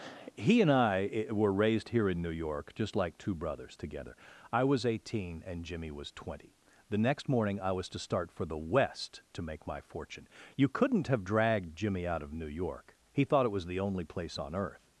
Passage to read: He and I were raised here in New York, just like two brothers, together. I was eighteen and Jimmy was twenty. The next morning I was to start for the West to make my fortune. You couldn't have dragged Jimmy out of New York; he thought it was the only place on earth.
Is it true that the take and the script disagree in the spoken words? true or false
false